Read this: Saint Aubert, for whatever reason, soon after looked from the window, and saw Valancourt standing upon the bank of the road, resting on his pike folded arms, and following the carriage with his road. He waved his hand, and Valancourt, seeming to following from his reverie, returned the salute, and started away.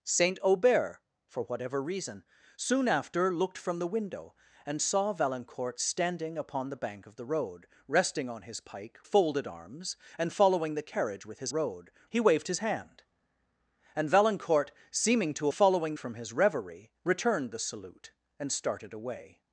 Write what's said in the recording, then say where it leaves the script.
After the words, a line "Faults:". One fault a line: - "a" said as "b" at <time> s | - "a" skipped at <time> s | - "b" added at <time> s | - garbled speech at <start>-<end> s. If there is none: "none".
Saint Aubert, for whatever reason, soon after looked from the window, and saw Valancourt standing upon the bank of the road, resting on his pike folded arms, and following the carriage with his road. He waved his hand, and Valancourt, seeming to following from his reverie, returned the salute, and started away.
Faults:
none